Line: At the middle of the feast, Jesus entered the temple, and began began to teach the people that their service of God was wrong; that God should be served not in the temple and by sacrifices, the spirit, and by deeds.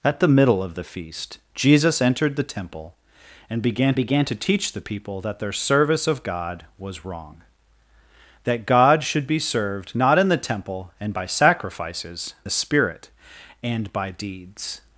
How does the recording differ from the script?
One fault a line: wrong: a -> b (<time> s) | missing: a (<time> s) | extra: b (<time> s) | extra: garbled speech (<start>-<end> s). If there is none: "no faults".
no faults